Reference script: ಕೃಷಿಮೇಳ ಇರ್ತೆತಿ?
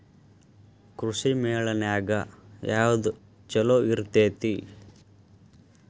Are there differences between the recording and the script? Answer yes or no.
yes